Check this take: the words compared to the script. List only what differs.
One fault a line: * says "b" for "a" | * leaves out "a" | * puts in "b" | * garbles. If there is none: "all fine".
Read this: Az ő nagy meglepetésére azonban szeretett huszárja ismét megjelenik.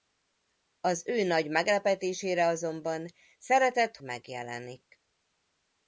* leaves out "huszárja ismét"